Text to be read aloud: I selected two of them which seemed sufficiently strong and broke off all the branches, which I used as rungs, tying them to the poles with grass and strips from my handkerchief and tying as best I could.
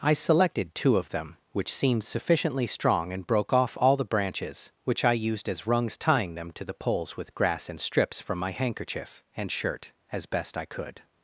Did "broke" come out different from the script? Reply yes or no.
no